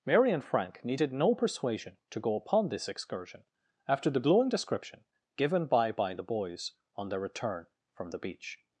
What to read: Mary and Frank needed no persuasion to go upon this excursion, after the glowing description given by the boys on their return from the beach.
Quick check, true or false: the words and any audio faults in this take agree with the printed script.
false